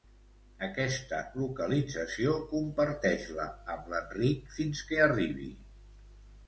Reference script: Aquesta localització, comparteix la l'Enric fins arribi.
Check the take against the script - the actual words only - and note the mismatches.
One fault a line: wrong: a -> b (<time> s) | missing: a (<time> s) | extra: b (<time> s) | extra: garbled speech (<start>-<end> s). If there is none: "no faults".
extra: amb (3.8 s)
extra: que (4.9 s)